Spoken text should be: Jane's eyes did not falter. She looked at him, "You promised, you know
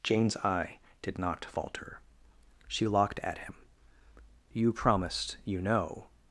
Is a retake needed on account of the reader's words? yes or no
yes